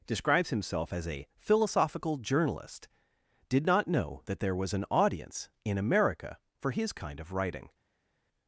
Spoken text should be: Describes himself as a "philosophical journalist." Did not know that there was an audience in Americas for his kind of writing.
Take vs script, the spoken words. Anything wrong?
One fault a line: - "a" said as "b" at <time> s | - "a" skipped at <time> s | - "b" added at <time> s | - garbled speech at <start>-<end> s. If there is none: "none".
- "Americas" said as "America" at 5.8 s